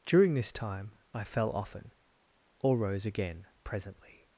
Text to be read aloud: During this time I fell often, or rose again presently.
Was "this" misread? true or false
false